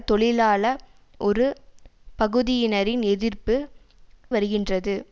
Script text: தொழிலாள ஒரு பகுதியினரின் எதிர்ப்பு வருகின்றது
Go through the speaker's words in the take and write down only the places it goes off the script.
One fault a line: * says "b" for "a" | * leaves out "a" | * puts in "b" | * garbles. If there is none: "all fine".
all fine